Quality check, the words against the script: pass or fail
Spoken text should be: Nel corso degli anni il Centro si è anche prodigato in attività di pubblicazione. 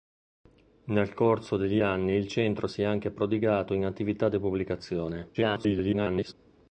fail